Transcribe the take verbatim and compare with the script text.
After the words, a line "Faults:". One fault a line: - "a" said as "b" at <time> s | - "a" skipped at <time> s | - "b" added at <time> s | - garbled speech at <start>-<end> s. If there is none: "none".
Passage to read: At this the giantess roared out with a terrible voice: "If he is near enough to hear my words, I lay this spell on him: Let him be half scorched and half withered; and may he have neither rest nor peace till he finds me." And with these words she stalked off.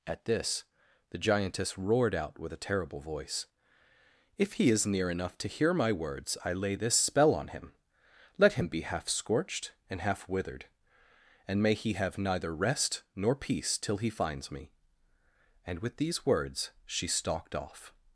At this the giantess roared out with a terrible voice: "If he is near enough to hear my words, I lay this spell on him: Let him be half scorched and half withered; and may he have neither rest nor peace till he finds me." And with these words she stalked off.
Faults:
none